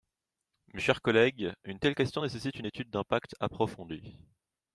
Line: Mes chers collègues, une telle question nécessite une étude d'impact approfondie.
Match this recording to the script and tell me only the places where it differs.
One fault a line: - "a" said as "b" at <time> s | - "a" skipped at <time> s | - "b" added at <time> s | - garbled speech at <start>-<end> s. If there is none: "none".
none